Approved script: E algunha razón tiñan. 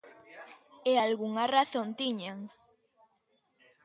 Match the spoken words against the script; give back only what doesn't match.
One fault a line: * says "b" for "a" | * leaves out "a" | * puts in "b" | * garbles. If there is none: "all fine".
all fine